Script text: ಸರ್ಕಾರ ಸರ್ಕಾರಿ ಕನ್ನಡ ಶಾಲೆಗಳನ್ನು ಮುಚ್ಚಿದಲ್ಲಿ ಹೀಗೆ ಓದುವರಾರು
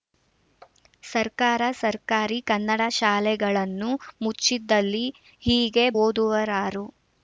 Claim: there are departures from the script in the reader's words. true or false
false